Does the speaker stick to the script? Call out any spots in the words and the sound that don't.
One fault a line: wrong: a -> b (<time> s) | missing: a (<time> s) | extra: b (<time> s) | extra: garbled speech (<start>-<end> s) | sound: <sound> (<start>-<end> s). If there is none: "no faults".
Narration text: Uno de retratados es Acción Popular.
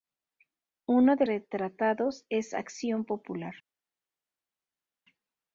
no faults